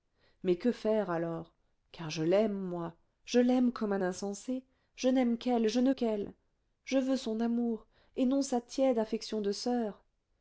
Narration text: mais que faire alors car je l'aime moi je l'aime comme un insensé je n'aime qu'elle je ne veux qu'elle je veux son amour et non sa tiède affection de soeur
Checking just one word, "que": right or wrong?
right